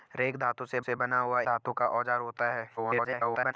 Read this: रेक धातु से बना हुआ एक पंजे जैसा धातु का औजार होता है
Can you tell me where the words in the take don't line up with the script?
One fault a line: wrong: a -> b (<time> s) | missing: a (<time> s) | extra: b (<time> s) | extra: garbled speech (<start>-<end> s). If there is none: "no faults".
extra: से (0.8 s)
missing: एक पंजे जैसा (1.4 s)
extra: garbled speech (2.8-3.5 s)